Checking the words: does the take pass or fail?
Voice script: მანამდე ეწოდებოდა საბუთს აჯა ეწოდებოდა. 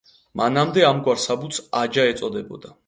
fail